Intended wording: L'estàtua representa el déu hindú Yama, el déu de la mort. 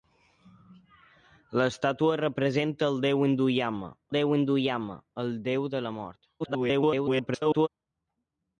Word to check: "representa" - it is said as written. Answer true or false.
true